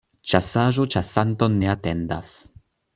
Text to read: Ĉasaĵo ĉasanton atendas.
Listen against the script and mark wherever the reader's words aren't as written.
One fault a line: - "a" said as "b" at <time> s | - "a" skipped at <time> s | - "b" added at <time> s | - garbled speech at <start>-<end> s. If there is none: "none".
- "ne" added at 1.6 s